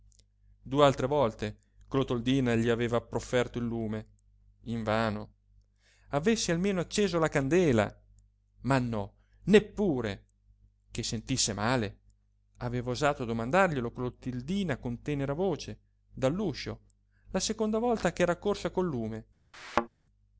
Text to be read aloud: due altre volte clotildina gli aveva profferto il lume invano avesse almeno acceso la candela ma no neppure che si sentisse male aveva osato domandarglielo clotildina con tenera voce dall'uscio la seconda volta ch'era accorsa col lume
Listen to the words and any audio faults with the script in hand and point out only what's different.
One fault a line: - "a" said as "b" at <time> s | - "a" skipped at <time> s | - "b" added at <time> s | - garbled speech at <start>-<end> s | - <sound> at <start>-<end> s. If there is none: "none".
- "si" skipped at 11.0 s
- thud at 19.5-19.9 s